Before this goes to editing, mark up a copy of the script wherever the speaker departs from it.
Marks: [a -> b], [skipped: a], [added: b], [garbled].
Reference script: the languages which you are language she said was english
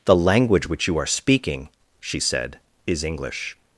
the [languages -> language] which you are [language -> speaking] she said [was -> is] english